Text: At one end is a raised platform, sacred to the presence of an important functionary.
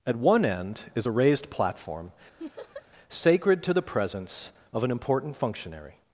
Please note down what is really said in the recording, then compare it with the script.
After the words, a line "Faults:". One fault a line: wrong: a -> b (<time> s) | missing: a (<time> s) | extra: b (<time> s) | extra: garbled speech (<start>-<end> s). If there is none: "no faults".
At one end is a raised platform, sacred to the presence of an important functionary.
Faults:
no faults